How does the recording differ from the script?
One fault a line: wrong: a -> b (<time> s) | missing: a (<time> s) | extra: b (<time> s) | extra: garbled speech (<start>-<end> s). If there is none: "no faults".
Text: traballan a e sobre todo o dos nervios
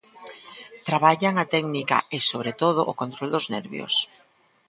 extra: técnica (1.5 s)
extra: control (3.0 s)